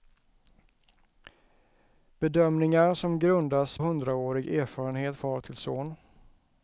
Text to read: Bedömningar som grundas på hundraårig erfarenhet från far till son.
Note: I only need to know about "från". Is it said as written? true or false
false